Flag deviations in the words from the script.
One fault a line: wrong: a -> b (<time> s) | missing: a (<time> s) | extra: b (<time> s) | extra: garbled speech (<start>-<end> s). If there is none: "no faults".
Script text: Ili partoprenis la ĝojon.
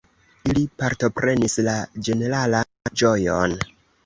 extra: ĝeneralan (2.1 s)